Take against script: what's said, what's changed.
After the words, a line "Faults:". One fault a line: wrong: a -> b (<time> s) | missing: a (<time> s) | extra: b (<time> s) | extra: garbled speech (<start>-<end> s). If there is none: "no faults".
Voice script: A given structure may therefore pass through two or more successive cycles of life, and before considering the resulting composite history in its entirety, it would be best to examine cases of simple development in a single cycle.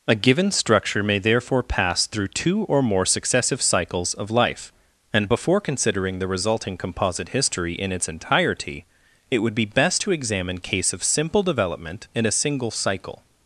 A given structure may therefore pass through two or more successive cycles of life, and before considering the resulting composite history in its entirety, it would be best to examine case of simple development in a single cycle.
Faults:
wrong: cases -> case (10.6 s)